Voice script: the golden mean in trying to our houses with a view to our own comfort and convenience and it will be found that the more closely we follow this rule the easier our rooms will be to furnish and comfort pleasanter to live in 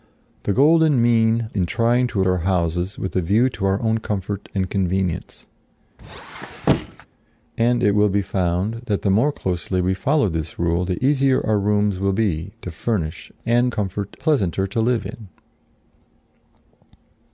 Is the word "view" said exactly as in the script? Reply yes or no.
yes